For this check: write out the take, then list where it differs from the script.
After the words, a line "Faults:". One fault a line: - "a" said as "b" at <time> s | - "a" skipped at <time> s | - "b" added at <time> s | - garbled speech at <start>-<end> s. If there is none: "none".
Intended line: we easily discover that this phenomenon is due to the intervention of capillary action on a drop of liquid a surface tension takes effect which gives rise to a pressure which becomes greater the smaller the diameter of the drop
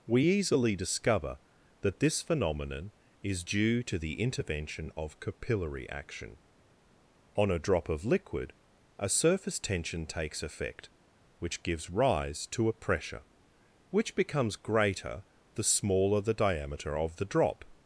we easily discover that this phenomenon is due to the intervention of capillary action on a drop of liquid a surface tension takes effect which gives rise to a pressure which becomes greater the smaller the diameter of the drop
Faults:
none